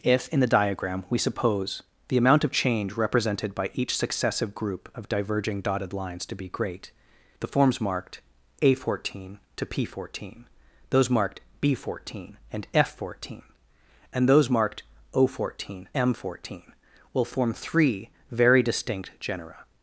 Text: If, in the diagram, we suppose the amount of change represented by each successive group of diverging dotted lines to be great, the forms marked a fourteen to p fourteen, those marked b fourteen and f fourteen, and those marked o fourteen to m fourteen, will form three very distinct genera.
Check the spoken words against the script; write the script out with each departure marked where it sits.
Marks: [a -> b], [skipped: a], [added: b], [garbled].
If, in the diagram, we suppose the amount of change represented by each successive group of diverging dotted lines to be great, the forms marked a fourteen to p fourteen, those marked b fourteen and f fourteen, and those marked o fourteen [skipped: to] m fourteen, will form three very distinct genera.